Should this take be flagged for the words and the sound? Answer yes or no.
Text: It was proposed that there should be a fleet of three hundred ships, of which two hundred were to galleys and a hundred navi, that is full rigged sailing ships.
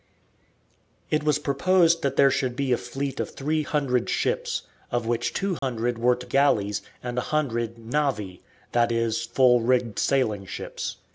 yes